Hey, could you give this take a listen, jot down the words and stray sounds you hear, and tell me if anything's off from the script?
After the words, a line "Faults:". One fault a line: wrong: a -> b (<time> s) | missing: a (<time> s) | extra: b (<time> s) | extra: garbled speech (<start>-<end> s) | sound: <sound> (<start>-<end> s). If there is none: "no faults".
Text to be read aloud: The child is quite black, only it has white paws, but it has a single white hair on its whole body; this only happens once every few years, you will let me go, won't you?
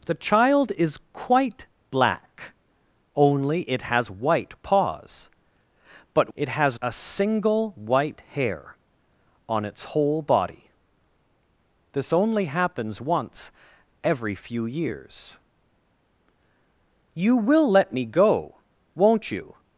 The child is quite black, only it has white paws, but it has a single white hair on its whole body; this only happens once every few years, you will let me go, won't you?
Faults:
no faults